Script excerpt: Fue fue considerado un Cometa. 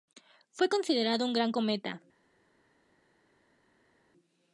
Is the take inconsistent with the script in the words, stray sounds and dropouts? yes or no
yes